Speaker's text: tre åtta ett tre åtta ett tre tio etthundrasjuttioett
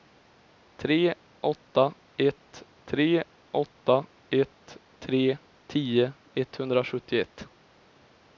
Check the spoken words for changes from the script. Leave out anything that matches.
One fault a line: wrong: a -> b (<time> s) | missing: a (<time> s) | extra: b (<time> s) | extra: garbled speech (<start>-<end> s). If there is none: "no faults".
no faults